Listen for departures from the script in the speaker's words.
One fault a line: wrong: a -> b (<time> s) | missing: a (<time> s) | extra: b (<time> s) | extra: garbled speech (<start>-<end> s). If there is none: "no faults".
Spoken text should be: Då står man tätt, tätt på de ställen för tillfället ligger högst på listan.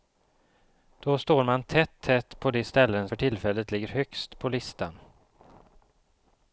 no faults